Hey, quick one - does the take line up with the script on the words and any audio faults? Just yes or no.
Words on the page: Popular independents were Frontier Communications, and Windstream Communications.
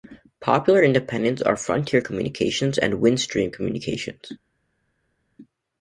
no